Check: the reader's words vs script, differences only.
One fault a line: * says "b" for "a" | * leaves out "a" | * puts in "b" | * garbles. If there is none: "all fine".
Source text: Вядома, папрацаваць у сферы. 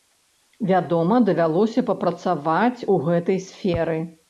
* puts in "давялося"
* puts in "гэтай"